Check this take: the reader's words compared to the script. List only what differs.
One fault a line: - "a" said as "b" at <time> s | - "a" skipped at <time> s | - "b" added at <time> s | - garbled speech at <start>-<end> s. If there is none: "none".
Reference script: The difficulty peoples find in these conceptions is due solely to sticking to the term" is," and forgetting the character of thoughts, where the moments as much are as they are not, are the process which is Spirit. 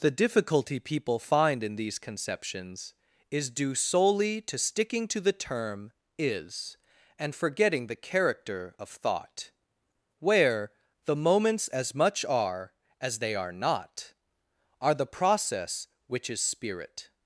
- "peoples" said as "people" at 0.8 s
- "thoughts" said as "thought" at 8.9 s